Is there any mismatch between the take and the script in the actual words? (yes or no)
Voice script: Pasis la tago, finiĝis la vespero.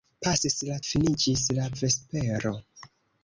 yes